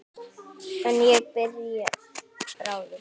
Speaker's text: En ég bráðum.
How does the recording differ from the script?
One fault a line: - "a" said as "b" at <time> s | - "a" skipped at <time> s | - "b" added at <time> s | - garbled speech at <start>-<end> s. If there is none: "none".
none